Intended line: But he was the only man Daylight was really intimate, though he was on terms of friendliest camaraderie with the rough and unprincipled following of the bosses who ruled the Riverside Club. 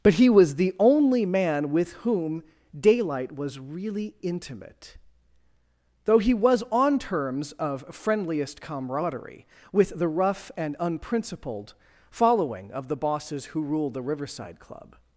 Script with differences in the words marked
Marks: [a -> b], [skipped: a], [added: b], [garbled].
But he was the only man [added: with whom] Daylight was really intimate, though he was on terms of friendliest camaraderie with the rough and unprincipled following of the bosses who ruled the Riverside Club.